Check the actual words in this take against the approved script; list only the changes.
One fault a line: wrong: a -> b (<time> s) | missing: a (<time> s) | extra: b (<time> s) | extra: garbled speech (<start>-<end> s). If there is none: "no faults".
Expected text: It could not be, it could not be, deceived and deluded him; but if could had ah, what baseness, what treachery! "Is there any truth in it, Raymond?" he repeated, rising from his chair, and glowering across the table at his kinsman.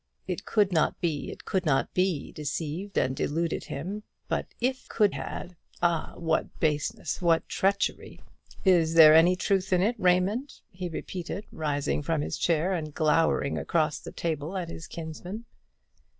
no faults